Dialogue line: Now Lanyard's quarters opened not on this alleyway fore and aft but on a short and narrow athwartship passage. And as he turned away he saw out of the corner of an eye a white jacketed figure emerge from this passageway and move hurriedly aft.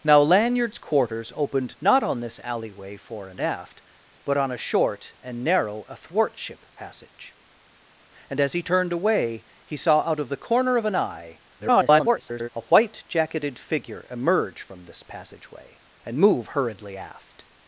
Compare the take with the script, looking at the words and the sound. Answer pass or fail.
fail